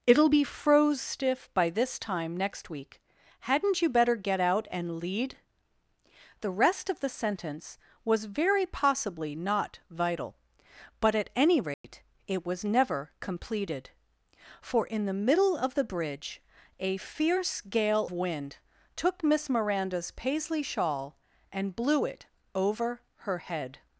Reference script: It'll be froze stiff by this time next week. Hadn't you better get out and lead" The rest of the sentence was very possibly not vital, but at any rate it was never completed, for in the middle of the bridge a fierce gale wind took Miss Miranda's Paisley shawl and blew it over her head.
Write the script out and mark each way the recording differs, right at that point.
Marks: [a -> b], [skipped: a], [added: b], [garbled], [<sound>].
It'll be froze stiff by this time next week. Hadn't you better get out and lead" The rest of the sentence was very possibly not vital, but at any rate [dropout] it was never completed, for in the middle of the bridge a fierce gale wind took Miss Miranda's Paisley shawl and blew it over her head.